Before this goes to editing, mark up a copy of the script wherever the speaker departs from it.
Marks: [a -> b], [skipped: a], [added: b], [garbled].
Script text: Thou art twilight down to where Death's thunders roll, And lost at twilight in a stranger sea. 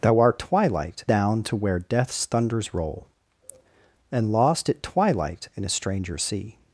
Thou art twilight down to where Death's thunders roll, And lost at twilight in a stranger sea.